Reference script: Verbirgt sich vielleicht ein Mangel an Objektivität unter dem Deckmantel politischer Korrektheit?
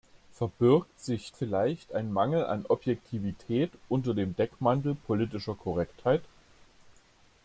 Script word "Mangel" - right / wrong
right